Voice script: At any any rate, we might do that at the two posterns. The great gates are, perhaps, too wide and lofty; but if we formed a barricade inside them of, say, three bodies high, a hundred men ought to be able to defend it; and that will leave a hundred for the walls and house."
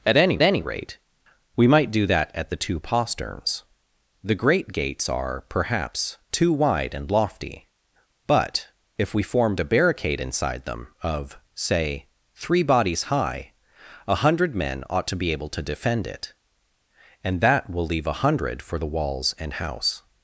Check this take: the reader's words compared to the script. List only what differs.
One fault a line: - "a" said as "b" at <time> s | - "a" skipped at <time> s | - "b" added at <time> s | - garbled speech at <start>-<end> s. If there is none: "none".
none